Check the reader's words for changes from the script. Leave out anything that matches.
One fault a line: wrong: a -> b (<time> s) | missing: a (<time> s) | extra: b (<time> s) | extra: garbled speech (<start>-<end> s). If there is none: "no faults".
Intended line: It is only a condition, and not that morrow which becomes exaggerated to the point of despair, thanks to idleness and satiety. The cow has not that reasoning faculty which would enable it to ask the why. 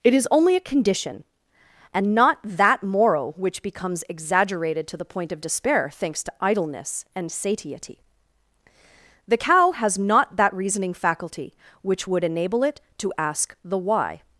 no faults